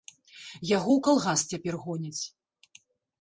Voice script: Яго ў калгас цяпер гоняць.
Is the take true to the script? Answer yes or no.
yes